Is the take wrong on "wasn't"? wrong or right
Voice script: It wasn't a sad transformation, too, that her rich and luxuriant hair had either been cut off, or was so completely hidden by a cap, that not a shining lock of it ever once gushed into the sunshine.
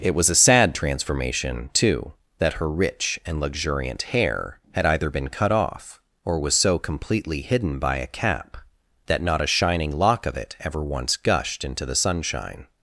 wrong